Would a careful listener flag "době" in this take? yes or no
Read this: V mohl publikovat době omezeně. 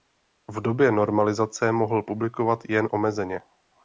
yes